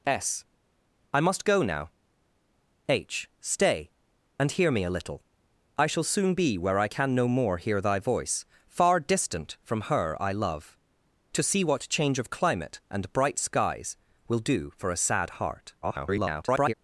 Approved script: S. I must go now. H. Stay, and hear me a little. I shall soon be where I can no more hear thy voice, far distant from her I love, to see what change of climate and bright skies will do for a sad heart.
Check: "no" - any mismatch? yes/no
no